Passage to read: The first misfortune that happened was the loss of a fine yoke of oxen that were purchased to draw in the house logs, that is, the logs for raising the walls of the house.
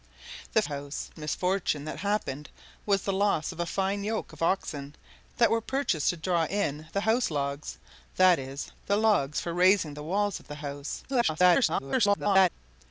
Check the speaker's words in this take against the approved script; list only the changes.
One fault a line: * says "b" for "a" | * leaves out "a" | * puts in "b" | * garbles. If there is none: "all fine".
* says "house" for "first"
* garbles